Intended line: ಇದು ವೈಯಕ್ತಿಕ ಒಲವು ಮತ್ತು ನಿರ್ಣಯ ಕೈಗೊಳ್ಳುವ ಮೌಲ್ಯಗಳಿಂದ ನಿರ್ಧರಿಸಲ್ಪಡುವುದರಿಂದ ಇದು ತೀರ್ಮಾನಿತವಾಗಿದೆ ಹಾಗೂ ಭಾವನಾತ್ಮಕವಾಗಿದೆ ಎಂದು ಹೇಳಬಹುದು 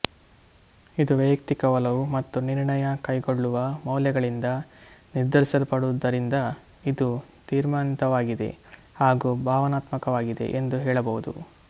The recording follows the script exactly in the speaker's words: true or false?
true